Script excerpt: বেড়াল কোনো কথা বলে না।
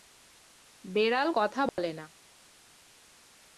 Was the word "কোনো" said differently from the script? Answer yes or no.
yes